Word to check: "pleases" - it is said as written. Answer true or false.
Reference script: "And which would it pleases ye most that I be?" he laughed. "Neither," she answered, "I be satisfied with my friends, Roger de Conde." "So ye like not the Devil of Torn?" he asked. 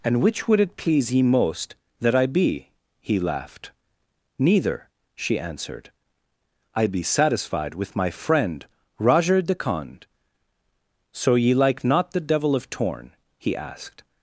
false